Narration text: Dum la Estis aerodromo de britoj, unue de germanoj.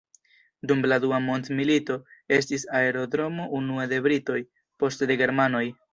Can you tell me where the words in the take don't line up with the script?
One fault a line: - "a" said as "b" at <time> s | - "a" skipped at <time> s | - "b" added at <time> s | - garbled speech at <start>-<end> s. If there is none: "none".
- "Dua mondmilito" added at 1.0 s
- "unue" added at 3.6 s
- "unue" said as "poste" at 4.8 s